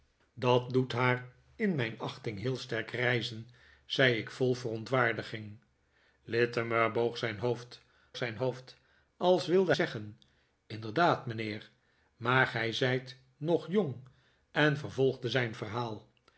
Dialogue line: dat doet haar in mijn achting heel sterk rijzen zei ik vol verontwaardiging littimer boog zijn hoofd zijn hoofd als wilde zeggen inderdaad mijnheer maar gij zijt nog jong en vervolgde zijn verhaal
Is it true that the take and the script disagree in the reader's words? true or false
false